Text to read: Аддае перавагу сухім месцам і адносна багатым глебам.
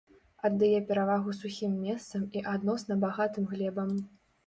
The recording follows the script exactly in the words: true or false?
true